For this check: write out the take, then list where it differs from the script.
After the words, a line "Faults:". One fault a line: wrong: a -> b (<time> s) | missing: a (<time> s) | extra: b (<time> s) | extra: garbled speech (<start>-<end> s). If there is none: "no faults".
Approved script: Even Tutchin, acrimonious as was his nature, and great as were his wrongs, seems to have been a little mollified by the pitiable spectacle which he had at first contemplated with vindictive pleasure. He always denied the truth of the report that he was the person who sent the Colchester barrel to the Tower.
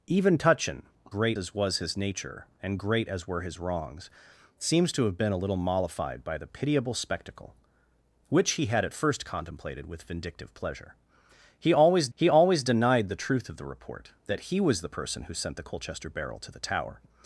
Even Tutchin, great as was his nature, and great as were his wrongs, seems to have been a little mollified by the pitiable spectacle which he had at first contemplated with vindictive pleasure. He always he always denied the truth of the report that he was the person who sent the Colchester barrel to the Tower.
Faults:
wrong: acrimonious -> great (1.1 s)
extra: he always (12.1 s)